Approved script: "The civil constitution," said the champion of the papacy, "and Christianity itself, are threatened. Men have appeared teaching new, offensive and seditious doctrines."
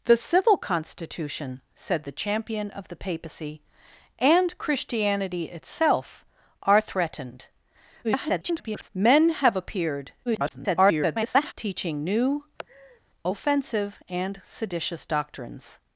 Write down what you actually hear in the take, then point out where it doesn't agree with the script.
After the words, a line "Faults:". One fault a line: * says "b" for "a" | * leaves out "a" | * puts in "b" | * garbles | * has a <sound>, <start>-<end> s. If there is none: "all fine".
"The civil constitution," said the champion of the papacy, "and Christianity itself, are threatened. [garbled] Men have appeared [garbled] teaching new, offensive and seditious doctrines."
Faults:
* garbles
* garbles
* has a laugh, 12.6-13.0 s